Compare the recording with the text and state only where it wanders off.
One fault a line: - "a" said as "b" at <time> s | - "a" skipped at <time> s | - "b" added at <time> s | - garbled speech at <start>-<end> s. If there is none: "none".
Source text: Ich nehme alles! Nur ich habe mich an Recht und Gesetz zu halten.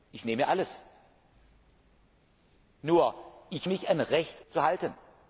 - "habe" skipped at 3.7 s
- "und Gesetz" skipped at 4.4 s